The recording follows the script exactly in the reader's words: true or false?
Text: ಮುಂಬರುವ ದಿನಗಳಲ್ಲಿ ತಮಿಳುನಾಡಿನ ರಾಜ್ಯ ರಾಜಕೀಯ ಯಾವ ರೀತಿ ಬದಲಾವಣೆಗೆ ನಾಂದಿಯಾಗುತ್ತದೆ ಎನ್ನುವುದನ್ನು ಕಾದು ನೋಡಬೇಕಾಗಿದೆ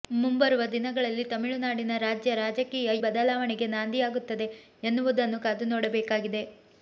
false